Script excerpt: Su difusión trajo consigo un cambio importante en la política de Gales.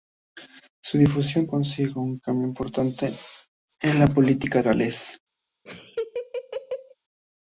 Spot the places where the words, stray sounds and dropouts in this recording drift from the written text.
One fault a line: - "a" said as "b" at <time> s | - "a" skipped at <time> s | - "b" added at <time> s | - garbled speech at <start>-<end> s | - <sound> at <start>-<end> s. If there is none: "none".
- "trajo" skipped at 1.5 s
- "de" skipped at 4.6 s
- laugh at 5.7-7.0 s